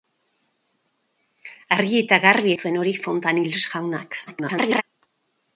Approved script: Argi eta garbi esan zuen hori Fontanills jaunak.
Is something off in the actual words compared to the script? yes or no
yes